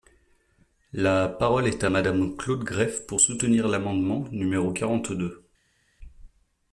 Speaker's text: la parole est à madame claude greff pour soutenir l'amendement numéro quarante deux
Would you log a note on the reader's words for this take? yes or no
no